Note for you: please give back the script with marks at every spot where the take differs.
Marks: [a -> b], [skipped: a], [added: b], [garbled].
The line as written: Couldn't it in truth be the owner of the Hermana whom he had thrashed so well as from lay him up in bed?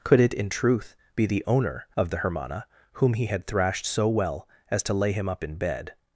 [Couldn't -> Could] it in truth be the owner of the Hermana whom he had thrashed so well as [from -> to] lay him up in bed?